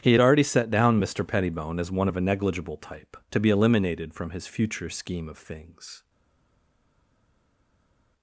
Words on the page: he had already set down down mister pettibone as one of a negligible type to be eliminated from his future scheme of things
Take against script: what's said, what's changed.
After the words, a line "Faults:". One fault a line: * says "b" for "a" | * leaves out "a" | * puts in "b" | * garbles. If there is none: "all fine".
he had already set down mister pettibone as one of a negligible type to be eliminated from his future scheme of things
Faults:
* leaves out "down"